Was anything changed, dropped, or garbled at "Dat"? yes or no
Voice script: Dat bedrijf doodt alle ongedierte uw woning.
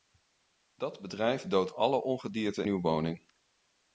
no